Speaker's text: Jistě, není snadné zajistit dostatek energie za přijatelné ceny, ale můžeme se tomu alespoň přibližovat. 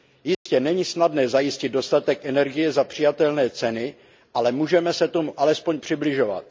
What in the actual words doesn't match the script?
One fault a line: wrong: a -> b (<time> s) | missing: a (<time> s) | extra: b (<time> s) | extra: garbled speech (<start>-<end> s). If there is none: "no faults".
no faults